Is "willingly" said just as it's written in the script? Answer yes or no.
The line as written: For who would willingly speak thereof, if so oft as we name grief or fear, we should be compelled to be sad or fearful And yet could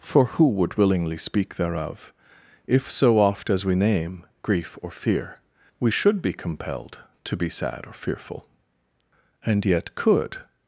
yes